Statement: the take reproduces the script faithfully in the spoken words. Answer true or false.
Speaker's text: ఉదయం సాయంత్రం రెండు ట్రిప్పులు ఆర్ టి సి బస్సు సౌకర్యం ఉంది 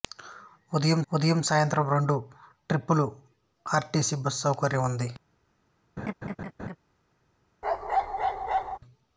false